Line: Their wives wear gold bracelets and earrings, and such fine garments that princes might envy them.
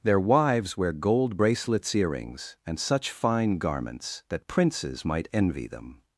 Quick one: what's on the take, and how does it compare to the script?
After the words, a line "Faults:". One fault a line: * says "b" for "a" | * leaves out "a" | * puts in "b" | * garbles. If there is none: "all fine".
Their wives wear gold bracelets earrings, and such fine garments that princes might envy them.
Faults:
* leaves out "and"